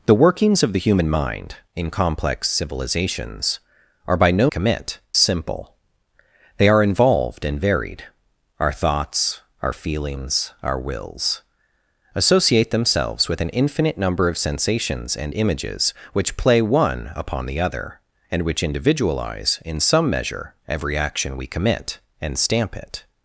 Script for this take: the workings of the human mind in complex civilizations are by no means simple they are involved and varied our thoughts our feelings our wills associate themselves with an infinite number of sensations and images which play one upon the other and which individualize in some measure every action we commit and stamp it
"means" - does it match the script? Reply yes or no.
no